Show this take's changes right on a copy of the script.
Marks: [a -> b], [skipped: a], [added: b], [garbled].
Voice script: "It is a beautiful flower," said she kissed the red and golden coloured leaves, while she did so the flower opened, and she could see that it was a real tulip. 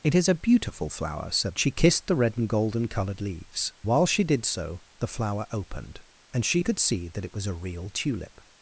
"It is a beautiful flower," said she kissed the red and golden coloured leaves, while she did so the flower opened, and she could see that it was a real tulip.